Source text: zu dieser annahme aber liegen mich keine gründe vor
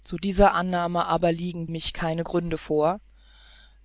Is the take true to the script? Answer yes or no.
yes